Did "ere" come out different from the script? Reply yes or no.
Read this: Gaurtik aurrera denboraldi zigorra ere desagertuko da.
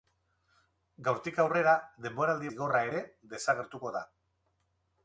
no